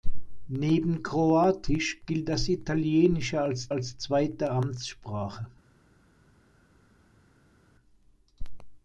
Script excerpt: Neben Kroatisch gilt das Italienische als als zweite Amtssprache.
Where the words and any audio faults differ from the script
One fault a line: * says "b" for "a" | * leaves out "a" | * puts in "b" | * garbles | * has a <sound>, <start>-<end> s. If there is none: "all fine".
all fine